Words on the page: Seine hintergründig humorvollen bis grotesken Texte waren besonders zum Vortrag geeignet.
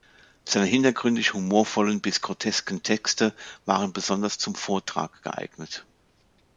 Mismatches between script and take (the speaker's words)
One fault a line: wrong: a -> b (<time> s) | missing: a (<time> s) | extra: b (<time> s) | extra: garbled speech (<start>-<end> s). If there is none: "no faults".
no faults